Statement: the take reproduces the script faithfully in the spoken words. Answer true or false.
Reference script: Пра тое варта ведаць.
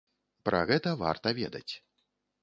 false